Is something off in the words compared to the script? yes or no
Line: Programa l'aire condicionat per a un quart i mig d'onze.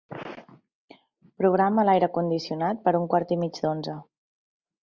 no